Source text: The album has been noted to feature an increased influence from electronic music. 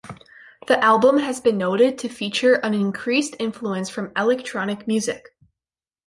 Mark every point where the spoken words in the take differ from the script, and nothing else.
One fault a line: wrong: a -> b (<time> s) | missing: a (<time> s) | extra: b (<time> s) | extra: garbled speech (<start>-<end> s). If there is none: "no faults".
no faults